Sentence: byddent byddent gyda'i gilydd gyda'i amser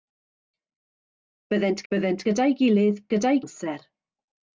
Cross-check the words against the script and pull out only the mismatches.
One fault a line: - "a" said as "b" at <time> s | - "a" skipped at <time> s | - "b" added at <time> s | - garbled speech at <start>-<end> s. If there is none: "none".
none